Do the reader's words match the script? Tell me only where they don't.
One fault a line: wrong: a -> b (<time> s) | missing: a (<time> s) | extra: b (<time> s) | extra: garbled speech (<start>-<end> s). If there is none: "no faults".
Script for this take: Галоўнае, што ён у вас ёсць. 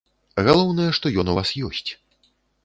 no faults